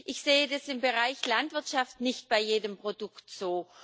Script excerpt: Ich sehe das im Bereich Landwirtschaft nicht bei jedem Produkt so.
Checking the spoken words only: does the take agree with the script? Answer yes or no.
yes